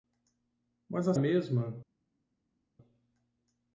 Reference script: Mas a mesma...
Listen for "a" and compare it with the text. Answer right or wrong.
right